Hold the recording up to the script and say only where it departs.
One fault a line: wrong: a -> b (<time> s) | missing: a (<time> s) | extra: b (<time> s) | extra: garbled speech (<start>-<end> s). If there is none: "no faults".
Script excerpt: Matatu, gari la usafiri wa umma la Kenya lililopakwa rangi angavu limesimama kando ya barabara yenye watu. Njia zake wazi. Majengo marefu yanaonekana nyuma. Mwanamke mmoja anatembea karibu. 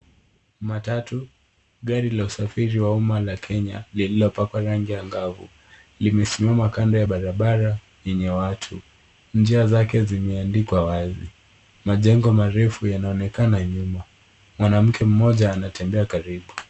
extra: zimeandikwa (10.0 s)